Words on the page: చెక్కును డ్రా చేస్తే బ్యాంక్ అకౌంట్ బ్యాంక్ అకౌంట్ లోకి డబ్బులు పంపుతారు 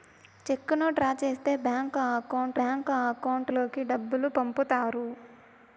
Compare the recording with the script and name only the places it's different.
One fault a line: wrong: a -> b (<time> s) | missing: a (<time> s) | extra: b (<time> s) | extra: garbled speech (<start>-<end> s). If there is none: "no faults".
no faults